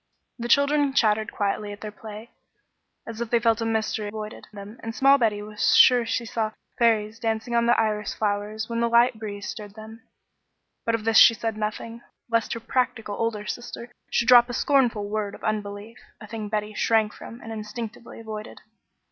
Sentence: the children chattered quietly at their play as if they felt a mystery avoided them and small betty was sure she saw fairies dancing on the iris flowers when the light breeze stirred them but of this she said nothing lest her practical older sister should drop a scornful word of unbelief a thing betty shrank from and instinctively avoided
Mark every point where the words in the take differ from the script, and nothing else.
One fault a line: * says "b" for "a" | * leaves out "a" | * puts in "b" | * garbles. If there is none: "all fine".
all fine